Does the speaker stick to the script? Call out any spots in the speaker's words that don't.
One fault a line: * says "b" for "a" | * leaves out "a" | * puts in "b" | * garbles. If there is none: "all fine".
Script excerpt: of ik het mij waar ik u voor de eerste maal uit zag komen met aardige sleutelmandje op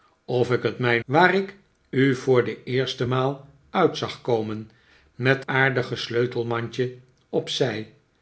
all fine